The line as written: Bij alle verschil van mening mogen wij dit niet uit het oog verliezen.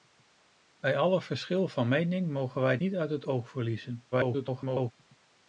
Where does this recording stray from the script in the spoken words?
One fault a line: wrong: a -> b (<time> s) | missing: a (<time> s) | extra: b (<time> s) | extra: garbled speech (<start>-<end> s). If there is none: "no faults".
missing: dit (2.8 s)
extra: garbled speech (4.1-4.9 s)